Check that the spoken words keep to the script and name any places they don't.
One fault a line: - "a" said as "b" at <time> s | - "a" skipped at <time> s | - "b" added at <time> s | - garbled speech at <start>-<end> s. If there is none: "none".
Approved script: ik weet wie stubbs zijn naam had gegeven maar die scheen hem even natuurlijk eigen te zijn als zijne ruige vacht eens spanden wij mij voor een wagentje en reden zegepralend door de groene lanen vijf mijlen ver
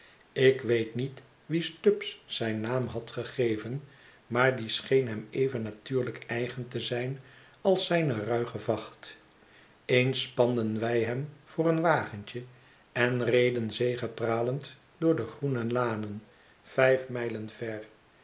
- "niet" added at 0.9 s
- "mij" said as "hem" at 11.0 s